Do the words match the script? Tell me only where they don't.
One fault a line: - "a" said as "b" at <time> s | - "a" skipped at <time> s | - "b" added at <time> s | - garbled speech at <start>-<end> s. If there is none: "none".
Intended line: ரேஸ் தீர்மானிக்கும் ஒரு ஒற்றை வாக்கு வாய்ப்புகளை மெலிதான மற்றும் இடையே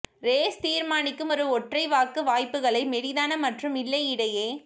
- "இல்லை" added at 3.8 s